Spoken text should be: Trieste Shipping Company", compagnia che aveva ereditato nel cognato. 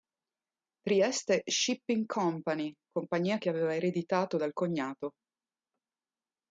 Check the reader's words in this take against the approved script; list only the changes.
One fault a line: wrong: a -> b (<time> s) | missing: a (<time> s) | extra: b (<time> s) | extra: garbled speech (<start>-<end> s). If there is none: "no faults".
wrong: nel -> dal (4.3 s)